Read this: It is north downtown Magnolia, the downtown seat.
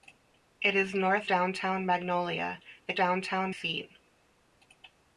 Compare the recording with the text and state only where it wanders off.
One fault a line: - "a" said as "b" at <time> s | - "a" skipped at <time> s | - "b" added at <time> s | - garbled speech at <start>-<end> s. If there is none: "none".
none